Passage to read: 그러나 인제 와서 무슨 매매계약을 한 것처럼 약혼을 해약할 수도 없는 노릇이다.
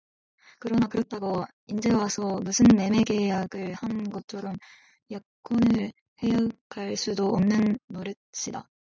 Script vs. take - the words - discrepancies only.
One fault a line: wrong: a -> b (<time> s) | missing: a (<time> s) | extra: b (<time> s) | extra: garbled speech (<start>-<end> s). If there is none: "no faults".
extra: 그렇다고 (0.9 s)